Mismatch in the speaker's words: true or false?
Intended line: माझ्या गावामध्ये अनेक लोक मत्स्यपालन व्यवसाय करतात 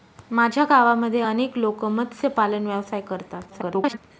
true